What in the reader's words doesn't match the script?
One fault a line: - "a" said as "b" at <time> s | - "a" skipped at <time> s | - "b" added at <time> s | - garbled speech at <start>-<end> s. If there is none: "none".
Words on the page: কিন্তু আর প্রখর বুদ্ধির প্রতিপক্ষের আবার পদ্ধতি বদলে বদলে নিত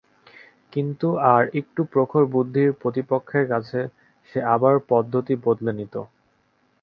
- "একটু" added at 1.6 s
- "কাছে সে" added at 3.5 s
- "বদলে" skipped at 5.7 s